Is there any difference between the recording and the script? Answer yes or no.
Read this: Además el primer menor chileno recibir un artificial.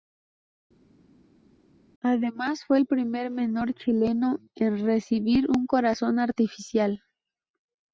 yes